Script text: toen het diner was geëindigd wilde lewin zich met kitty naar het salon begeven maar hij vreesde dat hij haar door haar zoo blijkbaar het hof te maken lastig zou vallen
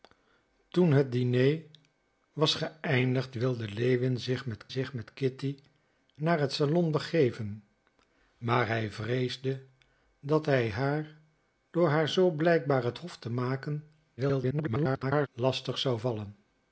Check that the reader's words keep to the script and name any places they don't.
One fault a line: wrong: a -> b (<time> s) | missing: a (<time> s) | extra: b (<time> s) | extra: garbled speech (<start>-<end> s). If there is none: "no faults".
extra: zich met (4.7 s)
extra: garbled speech (14.2-15.3 s)